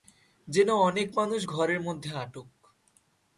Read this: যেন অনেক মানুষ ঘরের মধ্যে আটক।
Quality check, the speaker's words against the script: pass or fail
pass